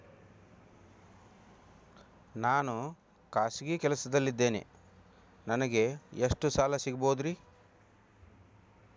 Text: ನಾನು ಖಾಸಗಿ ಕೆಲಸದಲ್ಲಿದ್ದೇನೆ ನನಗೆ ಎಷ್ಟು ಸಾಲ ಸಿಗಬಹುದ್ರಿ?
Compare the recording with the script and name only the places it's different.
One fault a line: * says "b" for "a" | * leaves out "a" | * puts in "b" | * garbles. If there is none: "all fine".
all fine